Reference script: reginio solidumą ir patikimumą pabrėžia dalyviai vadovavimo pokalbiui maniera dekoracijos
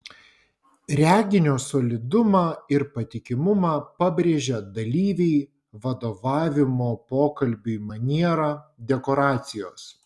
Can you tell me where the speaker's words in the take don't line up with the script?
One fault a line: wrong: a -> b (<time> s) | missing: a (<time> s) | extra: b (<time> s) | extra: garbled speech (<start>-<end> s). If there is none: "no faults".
no faults